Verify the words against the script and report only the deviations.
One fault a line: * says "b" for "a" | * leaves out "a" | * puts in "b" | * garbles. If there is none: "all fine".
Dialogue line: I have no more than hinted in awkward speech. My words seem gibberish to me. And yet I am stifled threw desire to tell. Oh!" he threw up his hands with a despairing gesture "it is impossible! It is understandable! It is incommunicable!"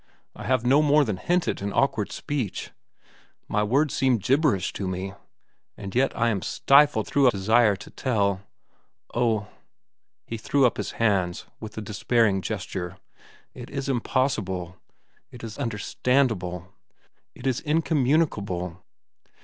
all fine